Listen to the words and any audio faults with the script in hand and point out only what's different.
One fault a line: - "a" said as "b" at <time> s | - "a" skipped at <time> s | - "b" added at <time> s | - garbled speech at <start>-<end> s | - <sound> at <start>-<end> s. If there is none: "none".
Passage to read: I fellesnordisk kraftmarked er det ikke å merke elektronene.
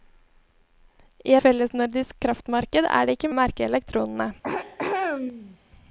- throat clearing at 4.4-5.6 s